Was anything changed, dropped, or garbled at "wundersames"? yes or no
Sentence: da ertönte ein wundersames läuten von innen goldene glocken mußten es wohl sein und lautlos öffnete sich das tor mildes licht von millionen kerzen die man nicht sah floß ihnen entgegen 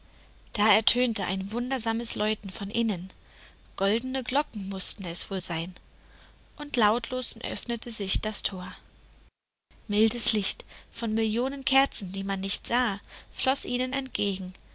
no